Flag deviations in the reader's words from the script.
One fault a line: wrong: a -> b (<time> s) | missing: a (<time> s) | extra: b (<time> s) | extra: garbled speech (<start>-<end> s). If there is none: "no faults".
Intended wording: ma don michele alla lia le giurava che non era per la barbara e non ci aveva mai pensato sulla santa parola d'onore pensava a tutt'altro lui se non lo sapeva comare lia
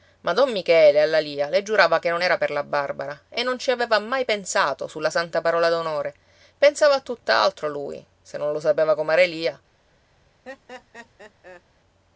no faults